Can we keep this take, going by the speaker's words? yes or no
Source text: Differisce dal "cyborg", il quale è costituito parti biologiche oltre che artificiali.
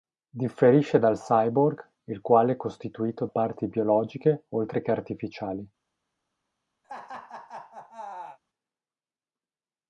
yes